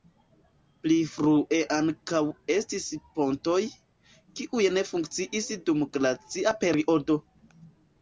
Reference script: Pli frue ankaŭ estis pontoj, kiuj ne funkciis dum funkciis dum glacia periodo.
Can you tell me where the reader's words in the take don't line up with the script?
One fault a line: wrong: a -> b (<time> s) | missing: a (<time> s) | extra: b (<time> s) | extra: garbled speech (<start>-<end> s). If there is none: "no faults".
missing: funkciis dum (5.9 s)